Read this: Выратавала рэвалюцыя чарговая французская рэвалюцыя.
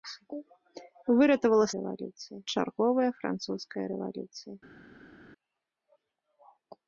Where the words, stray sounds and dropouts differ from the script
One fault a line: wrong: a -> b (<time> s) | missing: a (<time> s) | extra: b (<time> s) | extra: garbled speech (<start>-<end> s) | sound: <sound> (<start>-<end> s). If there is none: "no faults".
no faults